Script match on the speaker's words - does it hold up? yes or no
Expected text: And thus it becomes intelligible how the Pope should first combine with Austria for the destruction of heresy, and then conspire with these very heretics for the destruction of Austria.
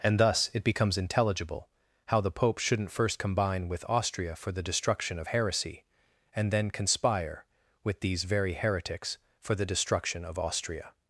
no